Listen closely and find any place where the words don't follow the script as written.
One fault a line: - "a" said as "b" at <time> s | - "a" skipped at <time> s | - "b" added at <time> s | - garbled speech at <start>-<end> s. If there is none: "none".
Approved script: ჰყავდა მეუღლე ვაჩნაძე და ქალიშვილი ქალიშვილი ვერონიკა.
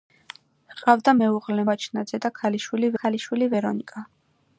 none